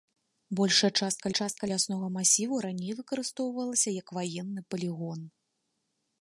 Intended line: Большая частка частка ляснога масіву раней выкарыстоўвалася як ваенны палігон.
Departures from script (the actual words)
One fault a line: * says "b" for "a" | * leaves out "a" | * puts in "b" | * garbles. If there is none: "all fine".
all fine